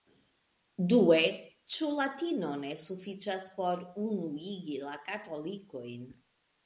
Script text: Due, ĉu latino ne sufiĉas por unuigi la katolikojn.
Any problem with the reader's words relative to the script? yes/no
no